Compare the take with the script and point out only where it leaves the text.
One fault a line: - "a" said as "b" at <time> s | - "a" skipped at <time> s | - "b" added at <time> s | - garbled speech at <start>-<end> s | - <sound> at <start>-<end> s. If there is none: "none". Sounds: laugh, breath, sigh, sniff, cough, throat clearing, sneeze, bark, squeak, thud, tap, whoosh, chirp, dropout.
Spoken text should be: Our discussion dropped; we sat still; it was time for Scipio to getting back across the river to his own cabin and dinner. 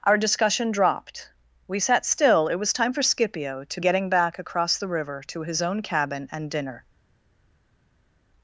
none